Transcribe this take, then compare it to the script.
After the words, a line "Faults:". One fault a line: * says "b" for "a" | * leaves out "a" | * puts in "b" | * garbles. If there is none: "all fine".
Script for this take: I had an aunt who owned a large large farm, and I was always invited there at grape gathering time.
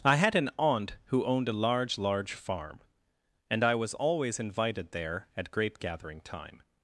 I had an aunt who owned a large large farm, and I was always invited there at grape gathering time.
Faults:
all fine